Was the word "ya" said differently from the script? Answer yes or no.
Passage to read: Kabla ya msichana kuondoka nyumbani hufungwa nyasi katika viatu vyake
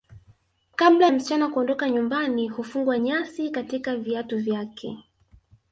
yes